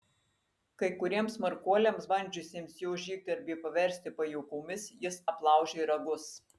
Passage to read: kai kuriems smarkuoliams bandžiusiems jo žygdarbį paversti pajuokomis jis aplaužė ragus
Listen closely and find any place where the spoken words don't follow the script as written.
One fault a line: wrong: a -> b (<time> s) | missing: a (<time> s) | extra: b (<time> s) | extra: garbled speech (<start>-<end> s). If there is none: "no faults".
no faults